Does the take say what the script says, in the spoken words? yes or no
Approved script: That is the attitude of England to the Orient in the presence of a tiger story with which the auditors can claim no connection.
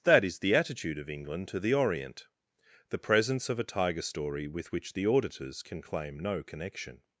no